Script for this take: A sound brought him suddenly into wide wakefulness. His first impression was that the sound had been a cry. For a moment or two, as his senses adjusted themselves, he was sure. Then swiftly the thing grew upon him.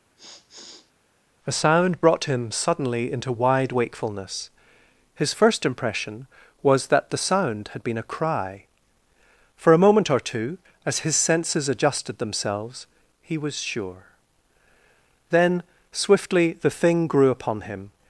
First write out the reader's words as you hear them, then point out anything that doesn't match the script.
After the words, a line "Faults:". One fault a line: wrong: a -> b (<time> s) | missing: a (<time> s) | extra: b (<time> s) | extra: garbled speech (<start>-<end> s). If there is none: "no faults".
A sound brought him suddenly into wide wakefulness. His first impression was that the sound had been a cry. For a moment or two, as his senses adjusted themselves, he was sure. Then swiftly the thing grew upon him.
Faults:
no faults